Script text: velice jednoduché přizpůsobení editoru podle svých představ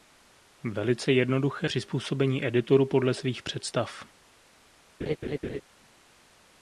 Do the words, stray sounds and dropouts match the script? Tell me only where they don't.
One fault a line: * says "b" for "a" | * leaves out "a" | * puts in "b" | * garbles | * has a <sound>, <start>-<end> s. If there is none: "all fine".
* has a laugh, 5.0-5.6 s